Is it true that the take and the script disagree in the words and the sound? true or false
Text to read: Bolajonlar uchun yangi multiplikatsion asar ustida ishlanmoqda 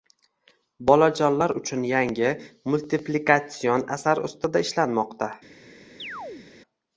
true